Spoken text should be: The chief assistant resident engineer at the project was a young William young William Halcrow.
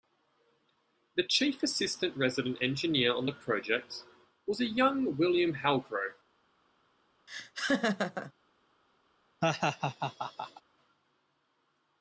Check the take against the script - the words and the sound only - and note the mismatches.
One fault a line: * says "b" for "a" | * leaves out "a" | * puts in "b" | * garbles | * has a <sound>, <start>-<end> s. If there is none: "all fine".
* says "on" for "at"
* leaves out "young William"
* has a laugh, 7.3-8.3 s
* has a laugh, 9.4-10.6 s